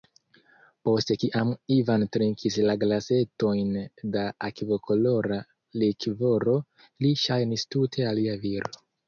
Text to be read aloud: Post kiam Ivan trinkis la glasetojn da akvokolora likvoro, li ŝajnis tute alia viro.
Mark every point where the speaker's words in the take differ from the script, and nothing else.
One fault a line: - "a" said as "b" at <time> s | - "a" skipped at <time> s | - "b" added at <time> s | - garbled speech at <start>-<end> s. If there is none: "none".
none